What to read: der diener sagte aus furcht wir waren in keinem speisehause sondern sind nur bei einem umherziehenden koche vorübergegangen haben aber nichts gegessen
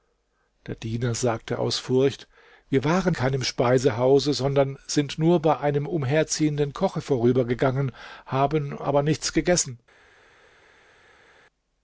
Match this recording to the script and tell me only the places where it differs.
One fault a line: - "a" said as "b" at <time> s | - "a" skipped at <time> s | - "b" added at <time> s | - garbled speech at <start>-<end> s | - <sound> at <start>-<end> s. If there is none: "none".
- "in" skipped at 3.1 s